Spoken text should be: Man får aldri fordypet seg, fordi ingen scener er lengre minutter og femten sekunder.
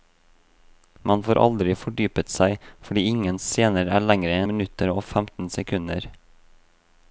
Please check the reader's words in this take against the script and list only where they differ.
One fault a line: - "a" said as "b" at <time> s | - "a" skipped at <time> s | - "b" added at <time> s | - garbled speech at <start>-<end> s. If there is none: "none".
none